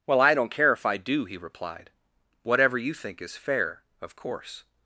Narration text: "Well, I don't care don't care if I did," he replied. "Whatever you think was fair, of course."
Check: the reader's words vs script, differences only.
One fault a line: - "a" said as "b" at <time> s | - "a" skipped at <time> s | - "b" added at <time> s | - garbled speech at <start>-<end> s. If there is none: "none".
- "don't care" skipped at 0.7 s
- "did" said as "do" at 1.0 s
- "was" said as "is" at 3.2 s